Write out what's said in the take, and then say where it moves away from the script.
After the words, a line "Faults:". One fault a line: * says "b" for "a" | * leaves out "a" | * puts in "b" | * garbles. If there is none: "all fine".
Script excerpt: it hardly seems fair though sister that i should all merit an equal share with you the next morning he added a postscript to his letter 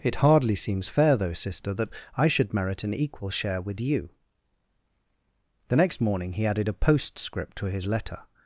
it hardly seems fair though sister that i should merit an equal share with you the next morning he added a postscript to his letter
Faults:
* leaves out "all"